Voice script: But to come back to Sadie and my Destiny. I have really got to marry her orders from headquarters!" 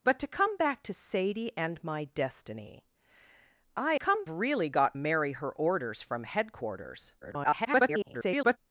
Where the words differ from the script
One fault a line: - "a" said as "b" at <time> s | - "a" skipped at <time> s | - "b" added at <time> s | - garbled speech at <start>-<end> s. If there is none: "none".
- "have" said as "come" at 4.0 s
- "to" skipped at 5.0 s
- garbled speech at 7.2-8.6 s